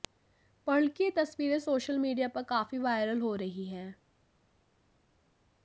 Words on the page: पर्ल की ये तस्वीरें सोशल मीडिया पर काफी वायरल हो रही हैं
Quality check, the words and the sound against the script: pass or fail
pass